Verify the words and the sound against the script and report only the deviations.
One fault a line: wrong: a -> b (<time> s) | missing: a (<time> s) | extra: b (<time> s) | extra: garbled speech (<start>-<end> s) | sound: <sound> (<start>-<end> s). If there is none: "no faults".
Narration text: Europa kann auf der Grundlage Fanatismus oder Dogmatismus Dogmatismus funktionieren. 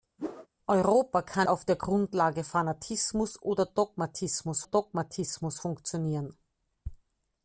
sound: whoosh (0.2-0.5 s)